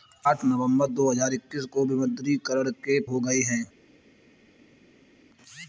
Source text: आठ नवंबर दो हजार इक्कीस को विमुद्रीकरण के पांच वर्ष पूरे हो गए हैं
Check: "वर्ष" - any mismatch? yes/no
yes